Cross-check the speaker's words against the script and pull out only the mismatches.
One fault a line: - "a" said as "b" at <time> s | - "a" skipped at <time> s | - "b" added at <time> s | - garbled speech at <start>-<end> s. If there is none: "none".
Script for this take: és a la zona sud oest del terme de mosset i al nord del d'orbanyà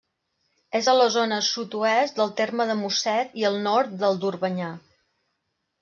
none